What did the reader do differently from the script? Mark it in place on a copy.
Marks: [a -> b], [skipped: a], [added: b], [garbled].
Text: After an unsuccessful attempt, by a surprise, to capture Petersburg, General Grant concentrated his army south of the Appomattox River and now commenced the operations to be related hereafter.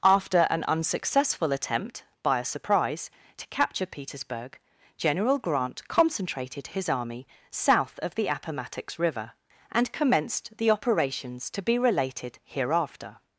After an unsuccessful attempt, by a surprise, to capture Petersburg, General Grant concentrated his army south of the Appomattox River and [skipped: now] commenced the operations to be related hereafter.